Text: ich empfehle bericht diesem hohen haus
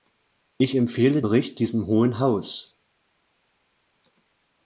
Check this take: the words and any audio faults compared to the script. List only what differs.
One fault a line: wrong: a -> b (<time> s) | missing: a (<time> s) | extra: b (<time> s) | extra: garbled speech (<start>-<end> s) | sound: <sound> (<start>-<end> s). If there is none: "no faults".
no faults